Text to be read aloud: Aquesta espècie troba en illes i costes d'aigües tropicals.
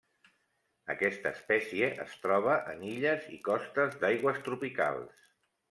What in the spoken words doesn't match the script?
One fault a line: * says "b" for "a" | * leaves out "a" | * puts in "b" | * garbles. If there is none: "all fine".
* puts in "es"